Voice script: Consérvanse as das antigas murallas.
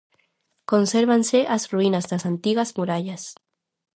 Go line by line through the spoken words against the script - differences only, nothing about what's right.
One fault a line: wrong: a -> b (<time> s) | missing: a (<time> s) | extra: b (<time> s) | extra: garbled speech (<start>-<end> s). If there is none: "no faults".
extra: ruínas (1.7 s)